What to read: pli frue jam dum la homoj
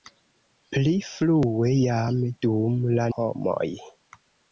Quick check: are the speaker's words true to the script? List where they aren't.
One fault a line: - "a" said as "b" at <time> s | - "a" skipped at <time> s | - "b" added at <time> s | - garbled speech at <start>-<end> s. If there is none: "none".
none